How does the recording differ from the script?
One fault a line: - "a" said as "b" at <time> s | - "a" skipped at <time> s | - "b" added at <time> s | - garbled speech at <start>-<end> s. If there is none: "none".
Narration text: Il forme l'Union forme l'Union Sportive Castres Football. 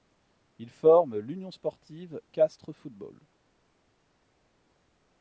- "forme l'Union" skipped at 1.5 s